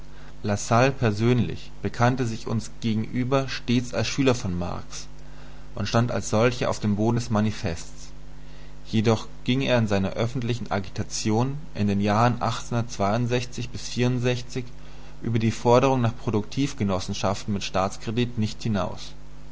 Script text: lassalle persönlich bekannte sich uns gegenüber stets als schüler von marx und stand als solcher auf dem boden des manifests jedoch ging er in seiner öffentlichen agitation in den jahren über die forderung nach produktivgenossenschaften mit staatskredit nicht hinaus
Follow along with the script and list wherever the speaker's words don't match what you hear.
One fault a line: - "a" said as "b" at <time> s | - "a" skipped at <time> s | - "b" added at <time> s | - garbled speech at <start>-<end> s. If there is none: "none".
none